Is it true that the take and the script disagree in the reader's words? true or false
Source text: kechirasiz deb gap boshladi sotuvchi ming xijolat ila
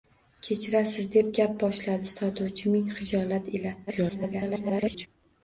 true